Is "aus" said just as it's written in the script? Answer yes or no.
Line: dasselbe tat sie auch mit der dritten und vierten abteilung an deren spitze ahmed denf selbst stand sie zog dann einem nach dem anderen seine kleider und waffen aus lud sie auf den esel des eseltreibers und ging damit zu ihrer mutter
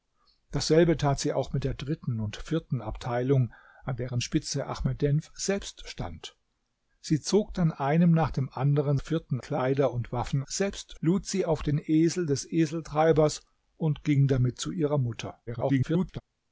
no